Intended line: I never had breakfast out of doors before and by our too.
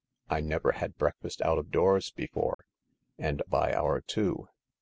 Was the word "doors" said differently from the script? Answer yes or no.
no